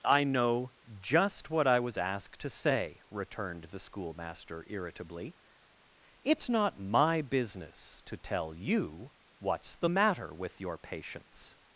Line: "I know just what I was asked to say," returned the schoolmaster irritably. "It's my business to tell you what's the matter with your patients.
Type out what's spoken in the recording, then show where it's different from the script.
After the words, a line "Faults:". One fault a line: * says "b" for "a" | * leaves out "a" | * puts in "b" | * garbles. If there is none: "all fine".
"I know just what I was asked to say," returned the schoolmaster irritably. "It's not my business to tell you what's the matter with your patients.
Faults:
* puts in "not"